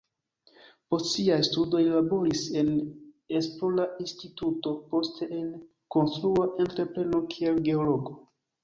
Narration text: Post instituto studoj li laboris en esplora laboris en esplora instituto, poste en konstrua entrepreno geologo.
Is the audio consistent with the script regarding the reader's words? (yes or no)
no